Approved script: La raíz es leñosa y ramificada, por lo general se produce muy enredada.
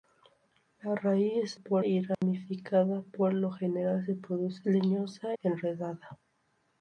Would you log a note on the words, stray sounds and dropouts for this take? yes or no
yes